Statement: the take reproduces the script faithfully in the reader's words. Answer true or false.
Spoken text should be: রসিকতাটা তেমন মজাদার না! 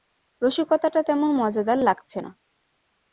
false